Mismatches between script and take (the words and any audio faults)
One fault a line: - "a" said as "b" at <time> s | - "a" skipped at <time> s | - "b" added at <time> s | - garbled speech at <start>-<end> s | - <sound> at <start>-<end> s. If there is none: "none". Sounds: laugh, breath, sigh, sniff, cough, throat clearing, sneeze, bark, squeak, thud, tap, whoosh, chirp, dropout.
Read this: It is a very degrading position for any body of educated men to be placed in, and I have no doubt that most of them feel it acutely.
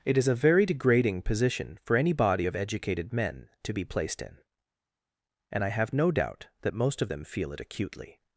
none